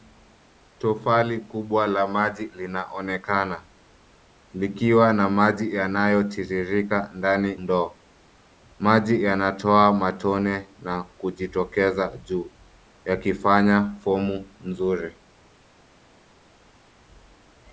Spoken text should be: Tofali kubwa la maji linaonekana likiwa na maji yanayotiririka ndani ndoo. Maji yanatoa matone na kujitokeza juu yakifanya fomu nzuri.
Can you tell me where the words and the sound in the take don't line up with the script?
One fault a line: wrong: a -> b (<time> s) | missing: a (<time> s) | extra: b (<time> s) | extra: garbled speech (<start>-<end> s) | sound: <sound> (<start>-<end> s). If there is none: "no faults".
no faults